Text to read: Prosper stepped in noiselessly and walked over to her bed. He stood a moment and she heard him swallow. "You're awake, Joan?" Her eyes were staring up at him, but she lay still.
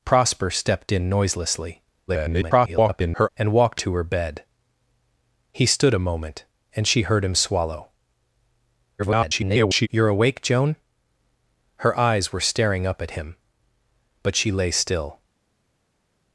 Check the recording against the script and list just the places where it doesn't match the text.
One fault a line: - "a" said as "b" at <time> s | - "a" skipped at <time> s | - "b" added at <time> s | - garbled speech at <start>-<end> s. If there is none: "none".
- garbled speech at 2.1-3.3 s
- "over" skipped at 3.8 s
- garbled speech at 9.0-9.9 s